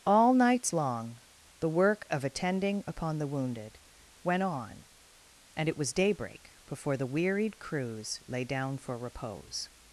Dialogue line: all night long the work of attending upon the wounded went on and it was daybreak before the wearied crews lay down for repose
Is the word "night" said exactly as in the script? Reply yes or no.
no